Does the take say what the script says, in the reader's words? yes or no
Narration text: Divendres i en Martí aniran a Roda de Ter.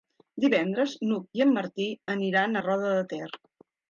no